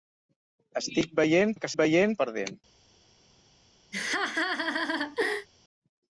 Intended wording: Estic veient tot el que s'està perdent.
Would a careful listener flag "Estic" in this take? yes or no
no